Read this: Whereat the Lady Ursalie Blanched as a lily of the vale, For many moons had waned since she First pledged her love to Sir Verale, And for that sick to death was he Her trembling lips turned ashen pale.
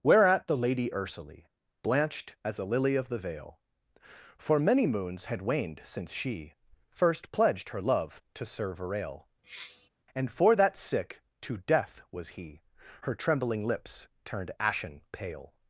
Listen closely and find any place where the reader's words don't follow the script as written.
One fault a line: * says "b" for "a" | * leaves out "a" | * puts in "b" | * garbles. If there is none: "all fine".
all fine